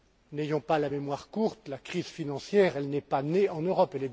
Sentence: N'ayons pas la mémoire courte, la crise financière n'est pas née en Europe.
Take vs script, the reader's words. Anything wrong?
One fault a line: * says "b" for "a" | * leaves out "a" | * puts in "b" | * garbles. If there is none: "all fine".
all fine